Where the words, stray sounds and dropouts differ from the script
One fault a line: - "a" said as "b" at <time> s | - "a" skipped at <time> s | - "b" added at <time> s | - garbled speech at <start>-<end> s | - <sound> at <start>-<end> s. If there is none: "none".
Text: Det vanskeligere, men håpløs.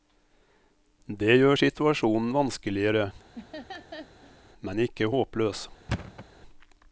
- "gjør situasjonen" added at 1.4 s
- laugh at 3.3-4.4 s
- "ikke" added at 4.9 s
- thud at 5.9-6.3 s